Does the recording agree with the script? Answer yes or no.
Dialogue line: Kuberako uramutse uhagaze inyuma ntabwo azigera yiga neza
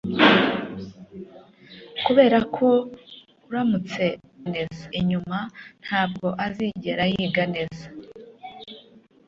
no